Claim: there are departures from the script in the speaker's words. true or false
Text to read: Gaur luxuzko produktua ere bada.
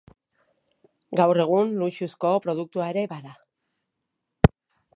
true